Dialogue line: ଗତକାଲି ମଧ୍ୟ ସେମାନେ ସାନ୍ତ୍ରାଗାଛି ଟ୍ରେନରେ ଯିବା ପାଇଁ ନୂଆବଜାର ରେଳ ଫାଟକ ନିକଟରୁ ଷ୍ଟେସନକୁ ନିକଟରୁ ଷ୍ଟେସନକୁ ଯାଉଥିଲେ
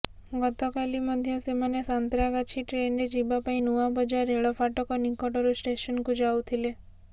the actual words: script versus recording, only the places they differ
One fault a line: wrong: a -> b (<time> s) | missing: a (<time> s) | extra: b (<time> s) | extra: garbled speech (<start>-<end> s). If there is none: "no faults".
missing: ନିକଟରୁ ଷ୍ଟେସନକୁ (6.2 s)